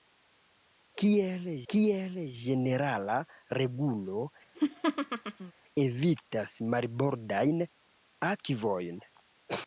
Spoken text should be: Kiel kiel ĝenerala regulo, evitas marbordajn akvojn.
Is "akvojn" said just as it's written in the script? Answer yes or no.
yes